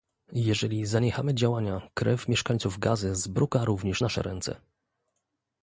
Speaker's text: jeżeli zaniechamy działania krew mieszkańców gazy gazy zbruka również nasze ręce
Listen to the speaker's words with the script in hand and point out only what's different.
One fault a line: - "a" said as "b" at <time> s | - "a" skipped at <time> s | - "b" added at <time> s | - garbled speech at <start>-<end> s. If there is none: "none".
- "gazy" skipped at 3.1 s